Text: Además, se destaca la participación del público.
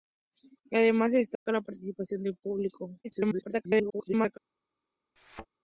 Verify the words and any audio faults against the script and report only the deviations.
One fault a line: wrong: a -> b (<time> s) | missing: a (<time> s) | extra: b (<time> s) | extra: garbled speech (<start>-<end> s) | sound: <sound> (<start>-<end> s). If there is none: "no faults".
sound: dropout (1.4-1.5 s)
extra: garbled speech (3.0-4.4 s)
sound: thud (5.2-5.5 s)